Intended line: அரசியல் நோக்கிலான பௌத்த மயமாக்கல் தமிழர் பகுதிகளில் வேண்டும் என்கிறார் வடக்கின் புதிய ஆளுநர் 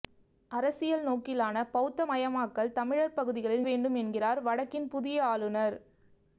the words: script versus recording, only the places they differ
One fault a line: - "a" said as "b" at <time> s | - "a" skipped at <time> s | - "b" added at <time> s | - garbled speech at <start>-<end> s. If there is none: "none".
none